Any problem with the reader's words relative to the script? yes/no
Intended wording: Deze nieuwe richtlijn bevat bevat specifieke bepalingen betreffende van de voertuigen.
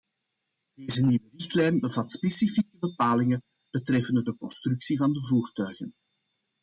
yes